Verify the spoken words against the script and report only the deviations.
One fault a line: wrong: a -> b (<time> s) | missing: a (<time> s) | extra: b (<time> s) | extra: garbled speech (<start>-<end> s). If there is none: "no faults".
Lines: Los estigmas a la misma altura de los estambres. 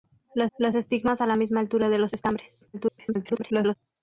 extra: los (0.6 s)
extra: garbled speech (2.7-3.7 s)